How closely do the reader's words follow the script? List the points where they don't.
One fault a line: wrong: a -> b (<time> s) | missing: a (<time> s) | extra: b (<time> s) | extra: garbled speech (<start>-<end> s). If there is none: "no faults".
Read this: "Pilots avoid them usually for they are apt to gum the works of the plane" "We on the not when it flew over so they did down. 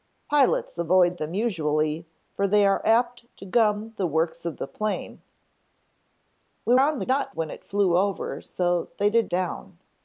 no faults